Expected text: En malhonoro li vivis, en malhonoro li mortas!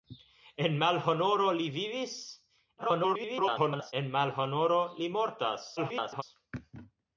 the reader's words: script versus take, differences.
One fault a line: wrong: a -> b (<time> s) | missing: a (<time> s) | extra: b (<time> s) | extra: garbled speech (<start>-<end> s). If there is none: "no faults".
extra: garbled speech (2.8-3.9 s)
extra: garbled speech (5.8-6.2 s)